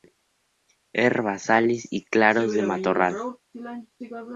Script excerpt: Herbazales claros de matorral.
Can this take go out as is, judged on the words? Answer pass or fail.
fail